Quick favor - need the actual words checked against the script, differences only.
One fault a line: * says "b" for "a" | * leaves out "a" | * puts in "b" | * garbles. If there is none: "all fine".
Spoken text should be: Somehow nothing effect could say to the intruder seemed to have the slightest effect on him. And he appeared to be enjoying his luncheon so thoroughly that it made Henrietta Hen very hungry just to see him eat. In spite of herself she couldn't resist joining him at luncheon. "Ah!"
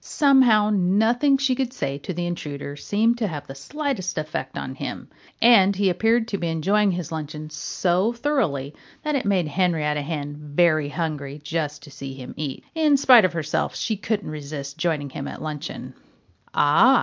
* says "she" for "effect"